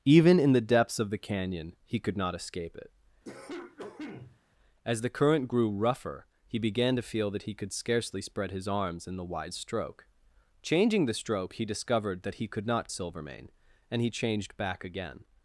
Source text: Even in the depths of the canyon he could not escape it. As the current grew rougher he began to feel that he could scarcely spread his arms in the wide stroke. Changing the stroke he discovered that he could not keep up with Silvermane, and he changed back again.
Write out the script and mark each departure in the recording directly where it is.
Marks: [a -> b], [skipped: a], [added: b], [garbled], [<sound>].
Even in the depths of the canyon he could not escape it. [cough] As the current grew rougher he began to feel that he could scarcely spread his arms in the wide stroke. Changing the stroke he discovered that he could not [skipped: keep up with] Silvermane, and he changed back again.